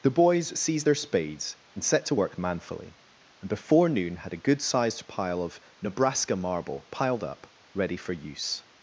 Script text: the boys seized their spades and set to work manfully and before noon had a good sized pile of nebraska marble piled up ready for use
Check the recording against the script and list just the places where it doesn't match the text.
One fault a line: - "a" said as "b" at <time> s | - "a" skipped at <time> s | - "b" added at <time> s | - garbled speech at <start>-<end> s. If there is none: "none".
none